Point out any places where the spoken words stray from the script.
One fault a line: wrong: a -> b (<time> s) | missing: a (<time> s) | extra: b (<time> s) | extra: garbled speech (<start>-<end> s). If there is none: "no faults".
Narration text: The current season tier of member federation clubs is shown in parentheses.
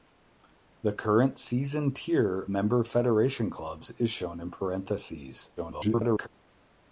missing: of (2.5 s)
extra: garbled speech (5.6-6.3 s)